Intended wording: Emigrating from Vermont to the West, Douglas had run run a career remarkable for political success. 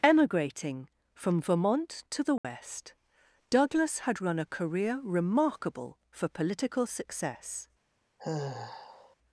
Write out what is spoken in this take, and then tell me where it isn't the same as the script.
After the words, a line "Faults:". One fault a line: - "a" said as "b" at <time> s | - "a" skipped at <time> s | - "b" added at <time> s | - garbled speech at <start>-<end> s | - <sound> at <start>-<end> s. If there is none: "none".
Emigrating from Vermont to the West, Douglas had run a career remarkable for political success.
Faults:
- dropout at 2.4-2.4 s
- "run" skipped at 4.4 s
- sigh at 8.2-9.2 s